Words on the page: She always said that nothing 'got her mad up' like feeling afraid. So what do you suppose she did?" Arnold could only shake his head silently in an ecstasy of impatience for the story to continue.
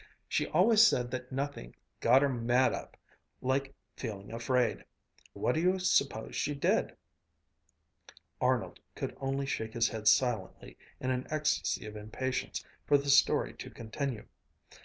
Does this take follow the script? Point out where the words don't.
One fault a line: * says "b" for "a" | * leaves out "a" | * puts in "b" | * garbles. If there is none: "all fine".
* leaves out "So"